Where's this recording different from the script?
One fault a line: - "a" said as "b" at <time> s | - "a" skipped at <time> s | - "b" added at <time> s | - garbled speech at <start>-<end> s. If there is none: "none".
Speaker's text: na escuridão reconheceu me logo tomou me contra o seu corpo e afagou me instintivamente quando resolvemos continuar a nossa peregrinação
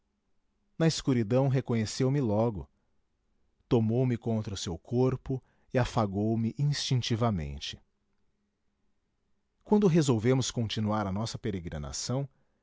none